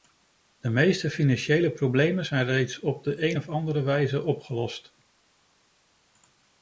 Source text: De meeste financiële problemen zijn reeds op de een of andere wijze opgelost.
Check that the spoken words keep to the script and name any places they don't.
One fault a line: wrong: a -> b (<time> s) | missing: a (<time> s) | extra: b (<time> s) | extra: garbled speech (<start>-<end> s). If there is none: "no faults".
no faults